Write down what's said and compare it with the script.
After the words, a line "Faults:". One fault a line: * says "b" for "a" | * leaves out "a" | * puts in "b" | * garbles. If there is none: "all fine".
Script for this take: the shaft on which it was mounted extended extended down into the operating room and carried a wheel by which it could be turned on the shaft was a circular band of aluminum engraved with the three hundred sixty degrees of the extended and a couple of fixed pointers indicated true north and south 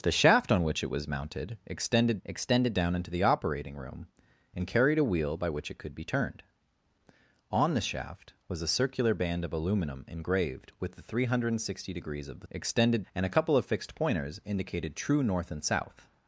the shaft on which it was mounted extended extended down into the operating room and carried a wheel by which it could be turned on the shaft was a circular band of aluminum engraved with the three hundred sixty degrees of the extended and a couple of fixed pointers indicated true north and south
Faults:
all fine